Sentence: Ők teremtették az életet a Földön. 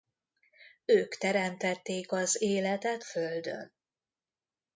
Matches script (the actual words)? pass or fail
fail